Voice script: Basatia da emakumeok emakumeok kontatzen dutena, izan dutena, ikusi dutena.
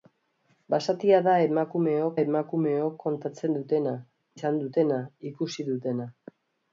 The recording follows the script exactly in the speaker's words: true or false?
true